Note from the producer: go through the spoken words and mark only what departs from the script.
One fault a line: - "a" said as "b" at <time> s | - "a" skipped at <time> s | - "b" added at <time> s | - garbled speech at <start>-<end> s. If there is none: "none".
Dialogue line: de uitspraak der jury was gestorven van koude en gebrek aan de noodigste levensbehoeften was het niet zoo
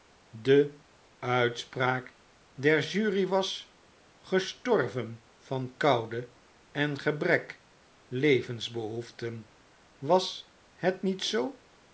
- "aan de noodigste" skipped at 7.6 s